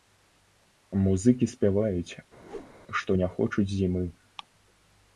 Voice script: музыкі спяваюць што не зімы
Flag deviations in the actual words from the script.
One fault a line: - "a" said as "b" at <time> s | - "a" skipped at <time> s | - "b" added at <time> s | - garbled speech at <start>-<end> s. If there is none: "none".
- "хочуць" added at 3.4 s